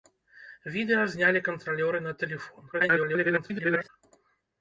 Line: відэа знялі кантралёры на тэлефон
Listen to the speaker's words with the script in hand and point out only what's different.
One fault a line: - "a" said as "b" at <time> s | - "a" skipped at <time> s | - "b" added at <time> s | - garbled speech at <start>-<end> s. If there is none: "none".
- garbled speech at 2.7-3.9 s